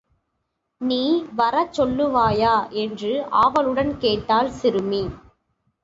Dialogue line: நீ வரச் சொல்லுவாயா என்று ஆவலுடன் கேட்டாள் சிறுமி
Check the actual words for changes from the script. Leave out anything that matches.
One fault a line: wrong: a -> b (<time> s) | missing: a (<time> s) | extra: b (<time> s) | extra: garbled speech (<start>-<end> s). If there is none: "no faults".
no faults